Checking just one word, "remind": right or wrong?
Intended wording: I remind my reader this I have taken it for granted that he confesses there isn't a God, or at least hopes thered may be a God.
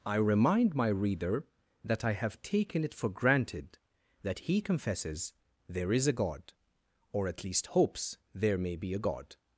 right